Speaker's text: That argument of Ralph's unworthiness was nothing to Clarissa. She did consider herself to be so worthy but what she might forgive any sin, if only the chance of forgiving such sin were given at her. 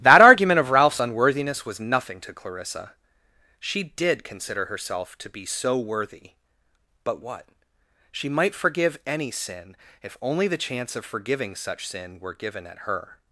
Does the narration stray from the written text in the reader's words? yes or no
no